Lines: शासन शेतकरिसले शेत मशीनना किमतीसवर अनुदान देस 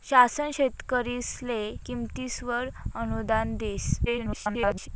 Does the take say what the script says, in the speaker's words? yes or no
no